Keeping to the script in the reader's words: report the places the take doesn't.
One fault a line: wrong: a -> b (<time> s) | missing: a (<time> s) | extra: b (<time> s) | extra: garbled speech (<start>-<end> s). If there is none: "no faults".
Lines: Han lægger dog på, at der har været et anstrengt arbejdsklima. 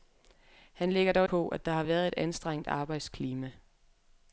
no faults